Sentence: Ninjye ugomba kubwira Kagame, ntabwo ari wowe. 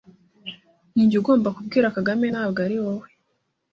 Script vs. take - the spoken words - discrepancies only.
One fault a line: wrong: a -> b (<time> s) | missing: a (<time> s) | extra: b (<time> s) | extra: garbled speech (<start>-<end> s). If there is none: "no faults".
no faults